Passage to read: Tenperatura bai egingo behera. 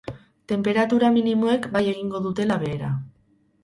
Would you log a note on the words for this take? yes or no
yes